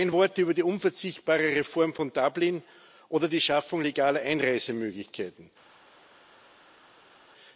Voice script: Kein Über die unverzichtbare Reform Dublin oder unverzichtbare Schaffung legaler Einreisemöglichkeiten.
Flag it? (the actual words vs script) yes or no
yes